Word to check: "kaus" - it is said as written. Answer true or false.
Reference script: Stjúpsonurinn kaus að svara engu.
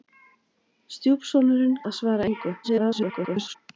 false